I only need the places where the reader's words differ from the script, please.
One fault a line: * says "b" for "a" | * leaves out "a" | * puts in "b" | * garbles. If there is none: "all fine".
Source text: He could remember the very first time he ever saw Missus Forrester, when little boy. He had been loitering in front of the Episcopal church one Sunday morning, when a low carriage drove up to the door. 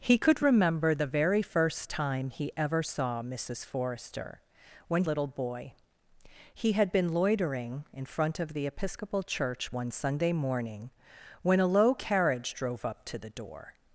all fine